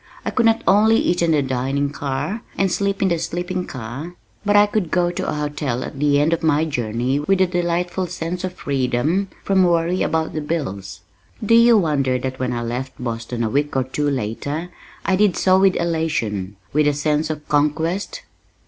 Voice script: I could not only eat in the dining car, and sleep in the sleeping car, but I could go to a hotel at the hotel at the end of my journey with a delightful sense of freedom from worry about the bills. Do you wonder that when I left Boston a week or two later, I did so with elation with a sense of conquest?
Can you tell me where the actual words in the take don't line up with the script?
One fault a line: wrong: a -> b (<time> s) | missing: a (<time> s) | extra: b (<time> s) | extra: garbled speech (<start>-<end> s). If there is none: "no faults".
missing: hotel at the (6.2 s)